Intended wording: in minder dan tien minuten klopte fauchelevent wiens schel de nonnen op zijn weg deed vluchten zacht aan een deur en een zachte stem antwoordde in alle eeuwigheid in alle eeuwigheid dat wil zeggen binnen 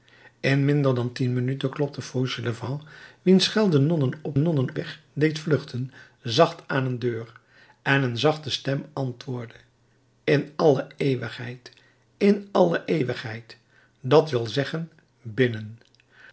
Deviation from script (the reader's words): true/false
true